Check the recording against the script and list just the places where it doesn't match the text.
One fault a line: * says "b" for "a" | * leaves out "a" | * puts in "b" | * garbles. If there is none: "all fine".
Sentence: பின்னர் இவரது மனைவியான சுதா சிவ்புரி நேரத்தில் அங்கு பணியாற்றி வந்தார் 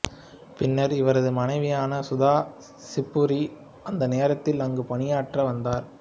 * puts in "அந்த"